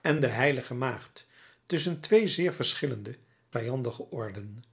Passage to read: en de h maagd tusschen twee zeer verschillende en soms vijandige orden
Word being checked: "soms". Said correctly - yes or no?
no